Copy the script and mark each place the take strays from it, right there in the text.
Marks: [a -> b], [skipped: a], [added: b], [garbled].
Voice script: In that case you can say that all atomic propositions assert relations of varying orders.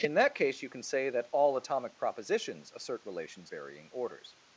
In that case you can say that all atomic propositions assert relations [skipped: of] varying orders.